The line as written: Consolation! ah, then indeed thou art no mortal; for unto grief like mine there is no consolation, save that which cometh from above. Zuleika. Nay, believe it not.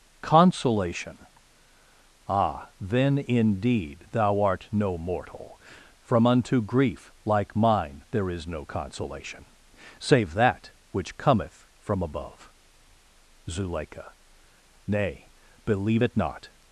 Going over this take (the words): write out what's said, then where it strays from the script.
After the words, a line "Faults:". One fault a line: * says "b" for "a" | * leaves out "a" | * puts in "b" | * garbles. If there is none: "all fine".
Consolation! ah, then indeed thou art no mortal; from unto grief like mine there is no consolation, save that which cometh from above. Zuleika. Nay, believe it not.
Faults:
* says "from" for "for"